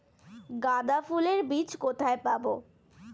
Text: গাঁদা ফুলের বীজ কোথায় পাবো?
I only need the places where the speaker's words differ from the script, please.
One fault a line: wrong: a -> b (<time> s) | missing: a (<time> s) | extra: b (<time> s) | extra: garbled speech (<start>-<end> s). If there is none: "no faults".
no faults